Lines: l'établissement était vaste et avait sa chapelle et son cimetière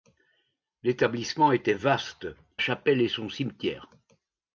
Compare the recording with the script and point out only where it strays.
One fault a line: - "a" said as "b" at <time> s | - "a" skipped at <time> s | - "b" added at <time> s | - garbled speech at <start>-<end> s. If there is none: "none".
- "et avait sa" skipped at 2.3 s